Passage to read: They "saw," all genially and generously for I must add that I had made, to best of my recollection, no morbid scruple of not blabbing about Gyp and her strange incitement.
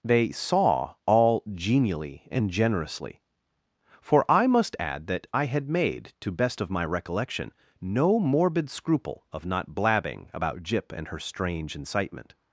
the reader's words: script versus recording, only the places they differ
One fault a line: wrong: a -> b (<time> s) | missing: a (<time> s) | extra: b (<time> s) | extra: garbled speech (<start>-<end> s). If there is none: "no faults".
no faults